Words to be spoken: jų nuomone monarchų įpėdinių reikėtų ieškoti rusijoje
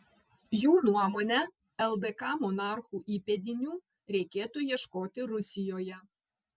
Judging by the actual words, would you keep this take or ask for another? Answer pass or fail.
fail